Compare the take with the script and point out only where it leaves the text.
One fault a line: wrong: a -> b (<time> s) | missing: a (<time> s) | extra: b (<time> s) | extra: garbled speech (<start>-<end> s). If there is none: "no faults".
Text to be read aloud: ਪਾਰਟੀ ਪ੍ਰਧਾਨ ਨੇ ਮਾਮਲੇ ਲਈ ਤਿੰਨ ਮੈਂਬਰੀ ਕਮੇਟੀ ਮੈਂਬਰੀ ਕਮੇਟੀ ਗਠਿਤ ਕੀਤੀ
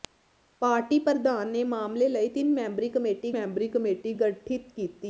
no faults